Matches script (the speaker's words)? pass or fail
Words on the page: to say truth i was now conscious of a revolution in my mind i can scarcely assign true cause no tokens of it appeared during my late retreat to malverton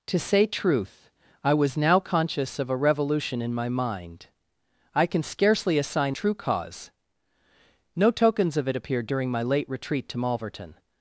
pass